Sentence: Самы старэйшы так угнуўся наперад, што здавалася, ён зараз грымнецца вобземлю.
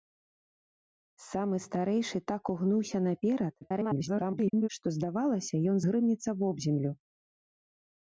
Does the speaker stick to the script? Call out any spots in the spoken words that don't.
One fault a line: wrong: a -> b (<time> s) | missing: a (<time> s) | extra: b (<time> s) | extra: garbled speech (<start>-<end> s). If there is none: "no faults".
extra: garbled speech (3.6-4.7 s)
missing: зараз (5.8 s)